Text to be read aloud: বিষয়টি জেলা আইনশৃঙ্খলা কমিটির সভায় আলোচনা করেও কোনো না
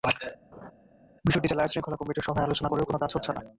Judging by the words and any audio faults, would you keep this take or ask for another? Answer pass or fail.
fail